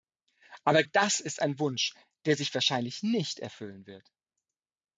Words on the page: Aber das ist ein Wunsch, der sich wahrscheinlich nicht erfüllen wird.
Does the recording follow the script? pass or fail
pass